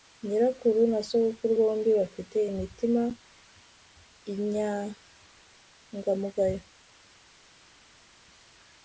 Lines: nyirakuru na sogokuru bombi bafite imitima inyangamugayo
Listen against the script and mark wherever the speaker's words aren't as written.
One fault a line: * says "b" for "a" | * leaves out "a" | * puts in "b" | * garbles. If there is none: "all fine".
all fine